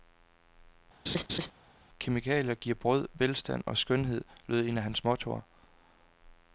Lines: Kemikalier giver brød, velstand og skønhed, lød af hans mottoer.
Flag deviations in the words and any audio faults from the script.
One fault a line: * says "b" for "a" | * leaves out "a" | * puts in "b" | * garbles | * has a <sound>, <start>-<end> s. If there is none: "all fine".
* has a laugh, 1.1-1.5 s
* puts in "et"